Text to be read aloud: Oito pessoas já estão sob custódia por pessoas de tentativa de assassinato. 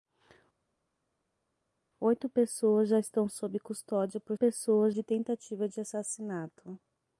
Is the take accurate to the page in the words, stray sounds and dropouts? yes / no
yes